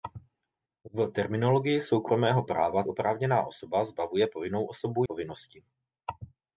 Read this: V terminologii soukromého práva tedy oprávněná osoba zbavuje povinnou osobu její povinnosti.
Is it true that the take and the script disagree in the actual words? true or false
true